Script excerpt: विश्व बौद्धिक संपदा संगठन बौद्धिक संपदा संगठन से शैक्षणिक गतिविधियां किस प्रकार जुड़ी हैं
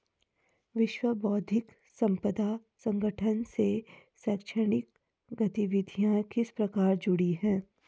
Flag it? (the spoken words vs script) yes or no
yes